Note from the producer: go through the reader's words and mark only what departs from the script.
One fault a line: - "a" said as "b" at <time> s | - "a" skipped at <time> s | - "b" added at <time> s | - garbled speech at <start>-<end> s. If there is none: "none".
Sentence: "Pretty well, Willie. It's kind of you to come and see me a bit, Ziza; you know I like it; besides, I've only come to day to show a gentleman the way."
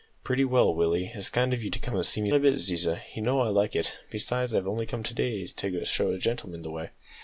none